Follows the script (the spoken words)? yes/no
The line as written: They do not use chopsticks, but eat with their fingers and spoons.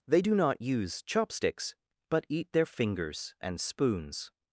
no